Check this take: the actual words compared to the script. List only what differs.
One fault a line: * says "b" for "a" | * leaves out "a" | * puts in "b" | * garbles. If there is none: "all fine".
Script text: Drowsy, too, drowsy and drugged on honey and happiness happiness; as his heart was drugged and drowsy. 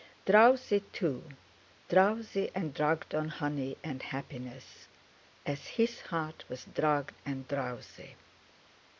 * leaves out "happiness"